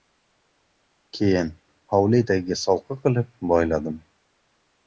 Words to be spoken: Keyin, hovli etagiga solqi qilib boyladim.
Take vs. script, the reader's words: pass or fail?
pass